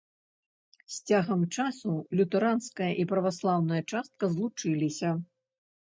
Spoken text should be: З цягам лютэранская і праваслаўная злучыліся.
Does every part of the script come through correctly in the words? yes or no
no